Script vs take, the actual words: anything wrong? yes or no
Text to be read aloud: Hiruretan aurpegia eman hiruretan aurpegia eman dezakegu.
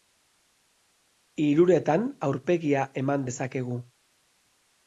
yes